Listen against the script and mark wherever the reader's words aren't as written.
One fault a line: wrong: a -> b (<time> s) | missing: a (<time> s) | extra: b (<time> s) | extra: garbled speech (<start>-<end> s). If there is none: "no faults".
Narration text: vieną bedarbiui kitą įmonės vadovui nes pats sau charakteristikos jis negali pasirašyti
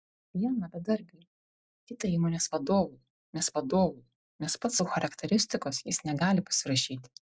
extra: vadovui nes (3.6 s)